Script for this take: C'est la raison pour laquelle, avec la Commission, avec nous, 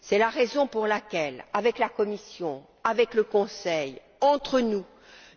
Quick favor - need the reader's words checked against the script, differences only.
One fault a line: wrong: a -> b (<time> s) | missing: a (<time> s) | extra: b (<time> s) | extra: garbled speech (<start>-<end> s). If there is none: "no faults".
extra: le Conseil entre (3.1 s)